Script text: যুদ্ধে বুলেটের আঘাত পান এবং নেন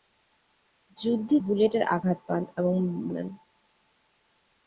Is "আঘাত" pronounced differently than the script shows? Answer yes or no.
no